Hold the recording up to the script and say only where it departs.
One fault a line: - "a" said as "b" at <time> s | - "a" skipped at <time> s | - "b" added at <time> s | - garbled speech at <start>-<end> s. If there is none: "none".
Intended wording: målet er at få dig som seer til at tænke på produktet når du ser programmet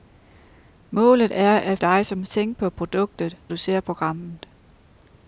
- "få" skipped at 1.8 s
- "seer til at" skipped at 2.2 s
- "når" skipped at 3.4 s